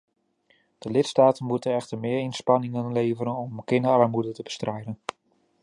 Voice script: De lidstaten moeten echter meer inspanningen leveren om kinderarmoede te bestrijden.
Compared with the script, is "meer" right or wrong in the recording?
right